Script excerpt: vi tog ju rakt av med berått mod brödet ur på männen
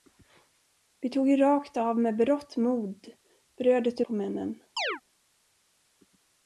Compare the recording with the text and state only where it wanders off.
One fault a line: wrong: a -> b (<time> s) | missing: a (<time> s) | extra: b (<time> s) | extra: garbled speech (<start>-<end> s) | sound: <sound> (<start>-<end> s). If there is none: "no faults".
sound: chirp (4.8-5.0 s)